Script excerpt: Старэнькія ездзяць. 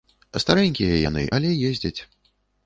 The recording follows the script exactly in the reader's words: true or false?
false